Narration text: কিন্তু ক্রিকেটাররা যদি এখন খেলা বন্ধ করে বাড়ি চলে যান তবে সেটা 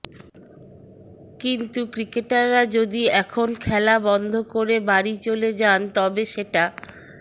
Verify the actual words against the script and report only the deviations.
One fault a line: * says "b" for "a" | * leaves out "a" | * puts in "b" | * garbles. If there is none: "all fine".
all fine